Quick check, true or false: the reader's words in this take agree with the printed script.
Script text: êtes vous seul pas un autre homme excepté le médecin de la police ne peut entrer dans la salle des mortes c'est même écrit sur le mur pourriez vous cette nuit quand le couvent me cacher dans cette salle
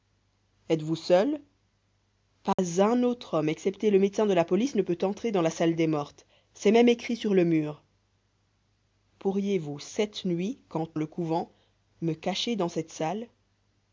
true